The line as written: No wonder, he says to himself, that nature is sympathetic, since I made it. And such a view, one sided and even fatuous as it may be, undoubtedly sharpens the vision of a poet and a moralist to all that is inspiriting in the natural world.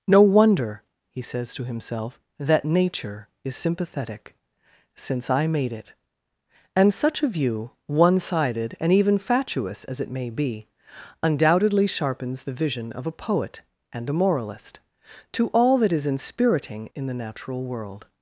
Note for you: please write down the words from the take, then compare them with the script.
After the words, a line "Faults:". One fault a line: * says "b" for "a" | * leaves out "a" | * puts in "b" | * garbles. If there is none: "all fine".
No wonder, he says to himself, that nature is sympathetic, since I made it. And such a view, one sided and even fatuous as it may be, undoubtedly sharpens the vision of a poet and a moralist to all that is inspiriting in the natural world.
Faults:
all fine